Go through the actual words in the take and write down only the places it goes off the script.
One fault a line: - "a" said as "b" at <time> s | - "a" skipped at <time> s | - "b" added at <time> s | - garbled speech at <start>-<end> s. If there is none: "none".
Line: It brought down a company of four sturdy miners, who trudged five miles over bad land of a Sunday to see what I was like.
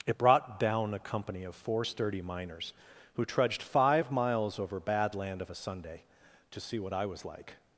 none